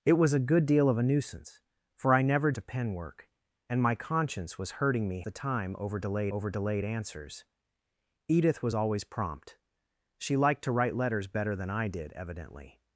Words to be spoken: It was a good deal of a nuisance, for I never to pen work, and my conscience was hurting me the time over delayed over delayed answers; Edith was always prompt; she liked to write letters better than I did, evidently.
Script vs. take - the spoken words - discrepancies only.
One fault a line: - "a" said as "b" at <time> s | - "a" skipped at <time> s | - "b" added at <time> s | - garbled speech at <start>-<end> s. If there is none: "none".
none